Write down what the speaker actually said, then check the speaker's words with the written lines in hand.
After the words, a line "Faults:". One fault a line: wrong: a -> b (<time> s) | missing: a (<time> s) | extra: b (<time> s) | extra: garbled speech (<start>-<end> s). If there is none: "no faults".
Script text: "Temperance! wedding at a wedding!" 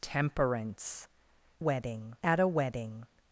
"Temperance! wedding at a wedding!"
Faults:
no faults